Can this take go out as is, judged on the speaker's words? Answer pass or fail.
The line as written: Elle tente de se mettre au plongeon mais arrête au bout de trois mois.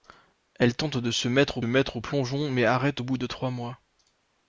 fail